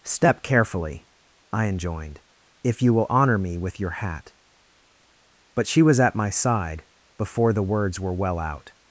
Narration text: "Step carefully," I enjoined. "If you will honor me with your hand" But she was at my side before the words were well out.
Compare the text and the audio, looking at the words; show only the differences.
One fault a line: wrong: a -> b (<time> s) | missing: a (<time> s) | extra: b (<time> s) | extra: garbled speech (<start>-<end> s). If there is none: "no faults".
wrong: hand -> hat (3.9 s)